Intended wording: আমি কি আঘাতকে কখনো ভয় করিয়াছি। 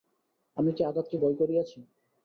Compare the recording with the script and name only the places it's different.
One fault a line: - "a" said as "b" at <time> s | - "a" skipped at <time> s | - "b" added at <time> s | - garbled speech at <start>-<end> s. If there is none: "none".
- "কখনো" skipped at 1.1 s